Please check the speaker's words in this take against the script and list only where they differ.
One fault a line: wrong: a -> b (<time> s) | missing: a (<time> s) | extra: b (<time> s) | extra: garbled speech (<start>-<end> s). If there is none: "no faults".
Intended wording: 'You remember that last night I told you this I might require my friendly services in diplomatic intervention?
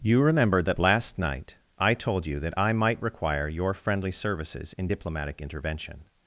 wrong: this -> that (2.4 s)
wrong: my -> your (3.5 s)